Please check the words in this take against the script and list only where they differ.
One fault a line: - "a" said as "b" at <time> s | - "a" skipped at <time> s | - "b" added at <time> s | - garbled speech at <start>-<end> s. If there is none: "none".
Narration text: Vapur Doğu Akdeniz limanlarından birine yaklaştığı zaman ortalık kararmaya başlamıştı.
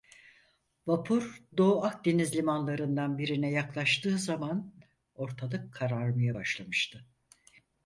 none